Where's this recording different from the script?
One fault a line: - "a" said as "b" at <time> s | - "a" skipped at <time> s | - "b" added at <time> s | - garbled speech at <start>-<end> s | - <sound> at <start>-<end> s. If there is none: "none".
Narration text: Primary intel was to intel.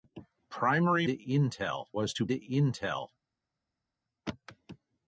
none